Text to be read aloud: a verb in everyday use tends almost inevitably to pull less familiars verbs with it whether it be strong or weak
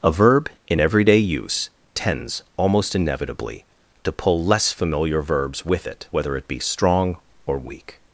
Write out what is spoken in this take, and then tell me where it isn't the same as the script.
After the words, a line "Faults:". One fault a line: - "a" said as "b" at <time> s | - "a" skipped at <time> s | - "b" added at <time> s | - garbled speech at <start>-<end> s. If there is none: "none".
a verb in everyday use tends almost inevitably to pull less familiar verbs with it whether it be strong or weak
Faults:
- "familiars" said as "familiar" at 4.7 s